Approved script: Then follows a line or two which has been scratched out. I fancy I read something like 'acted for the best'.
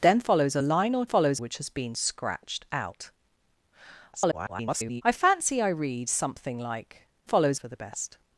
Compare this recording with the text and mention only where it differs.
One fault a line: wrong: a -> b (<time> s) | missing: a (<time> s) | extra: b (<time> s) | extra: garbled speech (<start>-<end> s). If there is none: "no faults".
wrong: two -> follows (1.0 s)
extra: garbled speech (4.1-5.0 s)
wrong: acted -> follows (7.2 s)